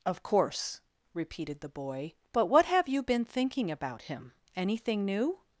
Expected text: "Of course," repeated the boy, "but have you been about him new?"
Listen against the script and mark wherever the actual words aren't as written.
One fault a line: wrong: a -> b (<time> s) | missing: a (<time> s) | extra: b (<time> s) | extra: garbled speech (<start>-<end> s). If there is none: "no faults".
extra: what (2.5 s)
extra: thinking (3.2 s)
extra: anything (4.5 s)